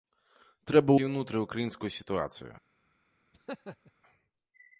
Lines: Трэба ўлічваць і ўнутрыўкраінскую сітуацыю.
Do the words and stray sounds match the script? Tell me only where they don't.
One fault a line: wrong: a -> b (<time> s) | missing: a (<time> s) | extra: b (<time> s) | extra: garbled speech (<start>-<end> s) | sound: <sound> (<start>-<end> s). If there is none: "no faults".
missing: ўлічваць (0.9 s)
sound: laugh (3.3-3.9 s)